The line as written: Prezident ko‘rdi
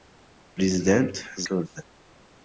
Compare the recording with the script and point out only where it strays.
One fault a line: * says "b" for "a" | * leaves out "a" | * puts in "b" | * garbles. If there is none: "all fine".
all fine